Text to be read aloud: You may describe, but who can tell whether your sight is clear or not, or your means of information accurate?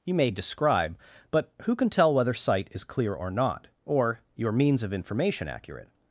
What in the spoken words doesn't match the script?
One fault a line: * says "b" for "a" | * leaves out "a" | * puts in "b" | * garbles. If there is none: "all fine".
* leaves out "your"